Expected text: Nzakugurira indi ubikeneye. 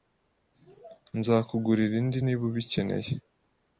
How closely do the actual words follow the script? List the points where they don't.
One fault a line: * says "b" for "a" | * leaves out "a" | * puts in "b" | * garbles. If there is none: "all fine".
* puts in "niba"